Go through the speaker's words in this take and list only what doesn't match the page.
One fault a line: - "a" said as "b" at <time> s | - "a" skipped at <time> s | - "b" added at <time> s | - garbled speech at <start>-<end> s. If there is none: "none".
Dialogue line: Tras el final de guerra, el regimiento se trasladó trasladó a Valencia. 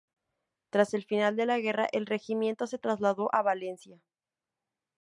- "la" added at 1.4 s
- "trasladó" skipped at 3.3 s